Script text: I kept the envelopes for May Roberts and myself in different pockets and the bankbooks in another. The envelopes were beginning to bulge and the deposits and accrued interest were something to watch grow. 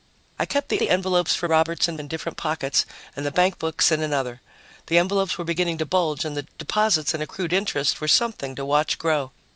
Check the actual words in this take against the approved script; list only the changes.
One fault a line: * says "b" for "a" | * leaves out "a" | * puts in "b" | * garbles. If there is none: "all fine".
* puts in "the"
* leaves out "May"
* leaves out "myself"